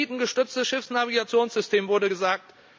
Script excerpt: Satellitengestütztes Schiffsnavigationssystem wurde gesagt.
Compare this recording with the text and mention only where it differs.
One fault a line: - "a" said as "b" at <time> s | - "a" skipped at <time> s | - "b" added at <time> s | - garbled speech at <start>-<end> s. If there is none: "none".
none